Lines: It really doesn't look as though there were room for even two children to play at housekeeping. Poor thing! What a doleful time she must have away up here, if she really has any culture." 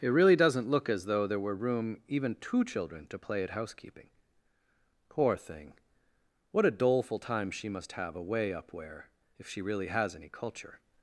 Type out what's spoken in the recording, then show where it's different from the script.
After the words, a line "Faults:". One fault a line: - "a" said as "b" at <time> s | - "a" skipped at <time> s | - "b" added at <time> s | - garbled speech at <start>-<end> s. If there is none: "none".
It really doesn't look as though there were room even two children to play at housekeeping. Poor thing! What a doleful time she must have away up where, if she really has any culture."
Faults:
- "for" skipped at 2.0 s
- "here" said as "where" at 8.7 s